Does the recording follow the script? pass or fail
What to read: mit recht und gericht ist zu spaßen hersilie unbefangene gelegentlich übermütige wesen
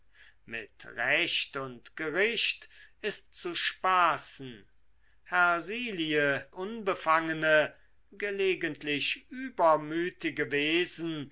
pass